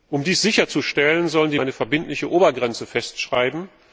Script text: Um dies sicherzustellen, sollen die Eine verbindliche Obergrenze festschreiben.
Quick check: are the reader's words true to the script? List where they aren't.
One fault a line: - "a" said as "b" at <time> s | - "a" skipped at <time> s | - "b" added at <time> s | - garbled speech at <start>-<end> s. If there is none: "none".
none